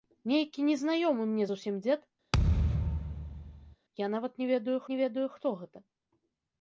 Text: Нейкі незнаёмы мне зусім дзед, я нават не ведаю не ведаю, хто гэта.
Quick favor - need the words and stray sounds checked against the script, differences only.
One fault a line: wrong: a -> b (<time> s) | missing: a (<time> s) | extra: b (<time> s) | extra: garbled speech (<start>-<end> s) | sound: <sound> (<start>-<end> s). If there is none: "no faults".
sound: thud (2.3-3.8 s)